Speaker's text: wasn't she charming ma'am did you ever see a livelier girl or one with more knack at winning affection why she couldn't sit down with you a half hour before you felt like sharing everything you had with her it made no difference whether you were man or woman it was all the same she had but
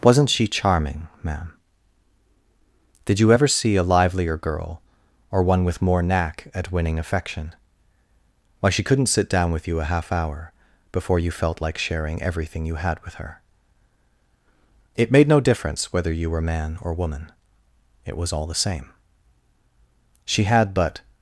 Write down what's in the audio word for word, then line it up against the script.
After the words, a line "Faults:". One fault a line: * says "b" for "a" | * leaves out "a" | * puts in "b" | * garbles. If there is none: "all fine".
wasn't she charming ma'am did you ever see a livelier girl or one with more knack at winning affection why she couldn't sit down with you a half hour before you felt like sharing everything you had with her it made no difference whether you were man or woman it was all the same she had but
Faults:
all fine